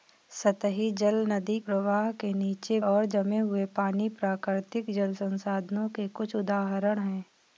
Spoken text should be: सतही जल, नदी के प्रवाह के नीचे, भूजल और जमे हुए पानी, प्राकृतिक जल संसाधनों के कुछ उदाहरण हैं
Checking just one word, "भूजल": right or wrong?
wrong